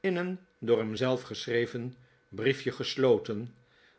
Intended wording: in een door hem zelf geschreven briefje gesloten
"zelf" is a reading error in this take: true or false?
false